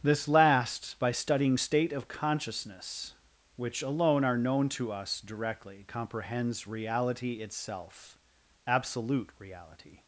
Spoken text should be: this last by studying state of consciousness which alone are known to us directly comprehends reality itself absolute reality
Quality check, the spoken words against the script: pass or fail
pass